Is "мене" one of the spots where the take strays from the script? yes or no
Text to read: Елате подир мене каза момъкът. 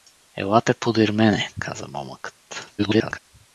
no